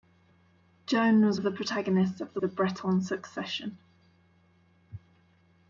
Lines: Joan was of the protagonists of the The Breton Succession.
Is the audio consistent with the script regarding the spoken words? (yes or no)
yes